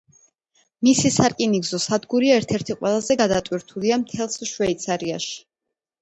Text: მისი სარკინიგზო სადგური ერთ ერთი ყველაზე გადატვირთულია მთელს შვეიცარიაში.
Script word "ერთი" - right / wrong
right